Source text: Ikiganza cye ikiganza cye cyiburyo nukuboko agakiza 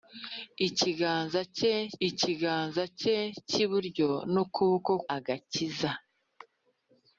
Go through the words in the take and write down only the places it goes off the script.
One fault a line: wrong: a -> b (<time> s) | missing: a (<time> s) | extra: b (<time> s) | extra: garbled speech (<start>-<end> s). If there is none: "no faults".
no faults